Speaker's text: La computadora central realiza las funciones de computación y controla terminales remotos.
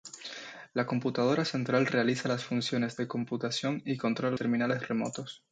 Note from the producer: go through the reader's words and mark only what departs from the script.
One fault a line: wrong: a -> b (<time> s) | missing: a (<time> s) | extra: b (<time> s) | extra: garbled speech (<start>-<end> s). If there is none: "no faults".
no faults